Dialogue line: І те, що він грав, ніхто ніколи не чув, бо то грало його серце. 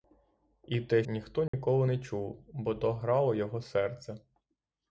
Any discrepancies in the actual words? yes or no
yes